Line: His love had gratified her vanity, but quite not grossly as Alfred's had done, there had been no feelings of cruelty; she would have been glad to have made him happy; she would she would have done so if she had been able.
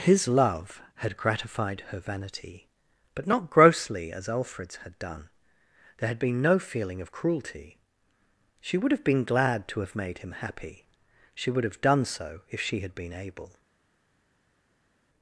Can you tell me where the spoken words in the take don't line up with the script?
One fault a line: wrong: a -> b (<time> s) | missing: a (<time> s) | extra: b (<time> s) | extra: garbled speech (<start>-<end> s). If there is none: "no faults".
missing: quite (3.3 s)
wrong: feelings -> feeling (6.6 s)
missing: she would (11.6 s)